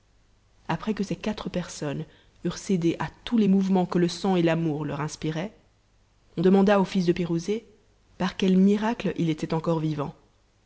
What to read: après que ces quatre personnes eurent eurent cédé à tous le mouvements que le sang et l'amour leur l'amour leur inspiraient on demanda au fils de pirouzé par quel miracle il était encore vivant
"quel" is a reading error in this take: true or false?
false